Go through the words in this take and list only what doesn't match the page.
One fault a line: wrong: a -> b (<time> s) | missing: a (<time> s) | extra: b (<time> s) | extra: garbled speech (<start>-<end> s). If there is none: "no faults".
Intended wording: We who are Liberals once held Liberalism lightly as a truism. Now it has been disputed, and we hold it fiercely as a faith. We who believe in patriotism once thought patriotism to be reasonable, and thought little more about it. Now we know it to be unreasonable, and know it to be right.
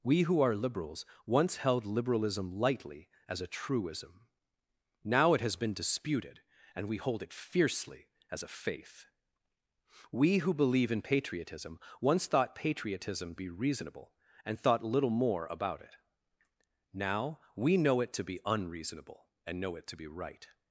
missing: to (13.3 s)